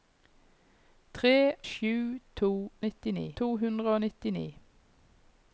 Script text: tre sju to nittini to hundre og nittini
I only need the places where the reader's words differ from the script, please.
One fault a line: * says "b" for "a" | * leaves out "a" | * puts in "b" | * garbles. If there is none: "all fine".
all fine